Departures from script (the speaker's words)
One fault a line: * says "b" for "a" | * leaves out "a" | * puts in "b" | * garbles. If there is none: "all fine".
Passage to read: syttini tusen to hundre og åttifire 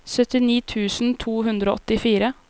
all fine